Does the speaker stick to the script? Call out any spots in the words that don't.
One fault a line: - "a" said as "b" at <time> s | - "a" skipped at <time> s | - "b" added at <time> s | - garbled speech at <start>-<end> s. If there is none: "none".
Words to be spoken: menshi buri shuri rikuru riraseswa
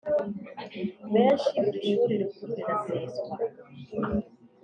none